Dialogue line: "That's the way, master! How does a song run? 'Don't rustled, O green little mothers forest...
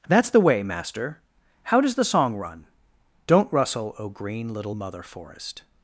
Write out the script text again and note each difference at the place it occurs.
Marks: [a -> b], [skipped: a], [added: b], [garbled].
"That's the way, master! How does [a -> the] song run? 'Don't [rustled, -> rustle] O green little [mothers -> mother] forest...